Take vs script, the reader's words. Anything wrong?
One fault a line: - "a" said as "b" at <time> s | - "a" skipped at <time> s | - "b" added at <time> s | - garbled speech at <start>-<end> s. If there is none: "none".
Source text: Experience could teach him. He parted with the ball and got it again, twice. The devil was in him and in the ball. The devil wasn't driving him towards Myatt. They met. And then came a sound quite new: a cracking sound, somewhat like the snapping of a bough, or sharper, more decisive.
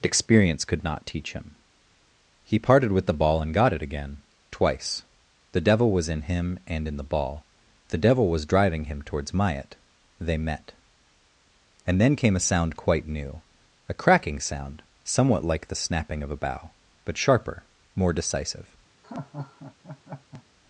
- "not" added at 0.8 s
- "wasn't" said as "was" at 8.3 s
- "or" said as "but" at 17.1 s